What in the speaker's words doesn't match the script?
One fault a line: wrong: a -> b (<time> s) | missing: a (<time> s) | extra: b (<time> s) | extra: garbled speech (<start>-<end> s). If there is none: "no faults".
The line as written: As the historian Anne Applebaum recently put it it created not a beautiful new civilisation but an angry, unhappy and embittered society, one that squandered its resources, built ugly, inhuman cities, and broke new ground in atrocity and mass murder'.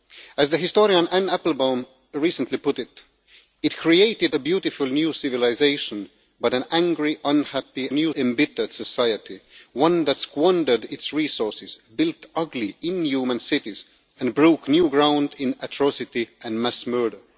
missing: not (4.3 s)
wrong: and -> new (7.9 s)